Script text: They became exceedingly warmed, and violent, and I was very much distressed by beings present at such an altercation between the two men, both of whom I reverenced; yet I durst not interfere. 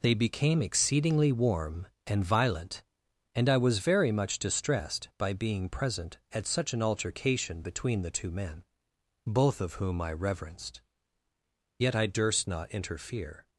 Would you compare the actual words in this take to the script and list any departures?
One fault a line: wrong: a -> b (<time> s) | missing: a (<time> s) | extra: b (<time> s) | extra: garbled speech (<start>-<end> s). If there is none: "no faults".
wrong: warmed -> warm (1.3 s)
wrong: beings -> being (5.3 s)